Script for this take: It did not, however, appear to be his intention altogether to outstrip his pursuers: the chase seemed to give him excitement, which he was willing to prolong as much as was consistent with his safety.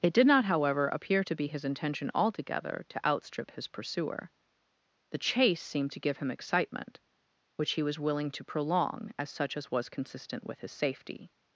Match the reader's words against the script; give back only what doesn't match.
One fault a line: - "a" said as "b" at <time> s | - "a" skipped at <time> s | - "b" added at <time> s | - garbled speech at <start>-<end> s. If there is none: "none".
- "pursuers" said as "pursuer" at 3.7 s
- "much" said as "such" at 9.3 s